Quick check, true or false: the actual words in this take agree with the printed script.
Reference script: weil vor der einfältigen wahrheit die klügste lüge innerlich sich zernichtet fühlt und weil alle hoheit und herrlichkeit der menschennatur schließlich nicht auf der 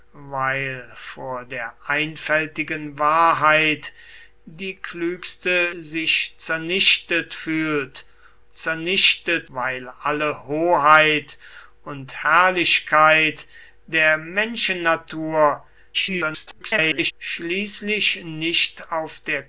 false